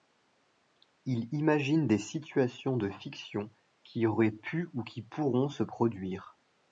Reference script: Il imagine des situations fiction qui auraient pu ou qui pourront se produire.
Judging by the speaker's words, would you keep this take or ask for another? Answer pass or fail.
fail